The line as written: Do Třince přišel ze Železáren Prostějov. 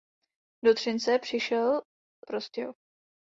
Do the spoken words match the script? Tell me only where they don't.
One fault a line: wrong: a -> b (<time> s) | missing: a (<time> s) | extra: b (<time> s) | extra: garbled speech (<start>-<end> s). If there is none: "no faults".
missing: ze Železáren (1.8 s)